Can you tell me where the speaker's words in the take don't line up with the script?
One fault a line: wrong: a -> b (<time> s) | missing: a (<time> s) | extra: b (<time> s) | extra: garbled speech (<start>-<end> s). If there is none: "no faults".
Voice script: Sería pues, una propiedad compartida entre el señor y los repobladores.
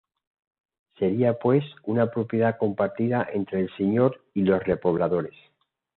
no faults